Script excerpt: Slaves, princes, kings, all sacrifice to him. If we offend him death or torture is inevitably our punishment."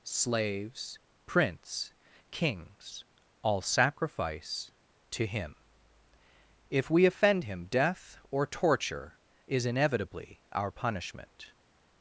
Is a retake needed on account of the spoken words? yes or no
yes